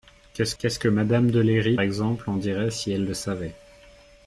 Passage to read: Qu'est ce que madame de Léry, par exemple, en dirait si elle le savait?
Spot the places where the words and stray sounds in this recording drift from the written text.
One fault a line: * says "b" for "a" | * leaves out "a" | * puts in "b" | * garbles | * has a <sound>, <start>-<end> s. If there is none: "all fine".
* puts in "qu'est ce"
* leaves out "par"